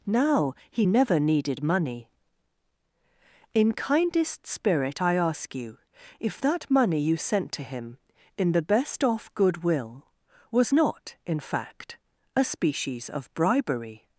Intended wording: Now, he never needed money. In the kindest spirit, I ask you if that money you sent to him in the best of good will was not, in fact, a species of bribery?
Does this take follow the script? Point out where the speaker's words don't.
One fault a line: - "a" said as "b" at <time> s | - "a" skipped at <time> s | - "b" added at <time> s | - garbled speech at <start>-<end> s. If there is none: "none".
- "the" skipped at 3.7 s
- "of" said as "off" at 9.0 s